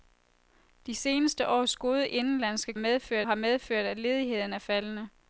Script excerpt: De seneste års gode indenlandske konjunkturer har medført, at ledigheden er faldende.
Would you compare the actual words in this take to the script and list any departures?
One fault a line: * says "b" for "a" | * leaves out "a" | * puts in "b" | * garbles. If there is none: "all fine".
* says "medført" for "konjunkturer"